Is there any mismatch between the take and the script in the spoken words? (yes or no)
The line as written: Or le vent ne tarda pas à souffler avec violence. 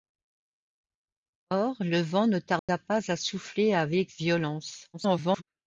yes